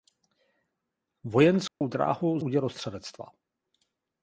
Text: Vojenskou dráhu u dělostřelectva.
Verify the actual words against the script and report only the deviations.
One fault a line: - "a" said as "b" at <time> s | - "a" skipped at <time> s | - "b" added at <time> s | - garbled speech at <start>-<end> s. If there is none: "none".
none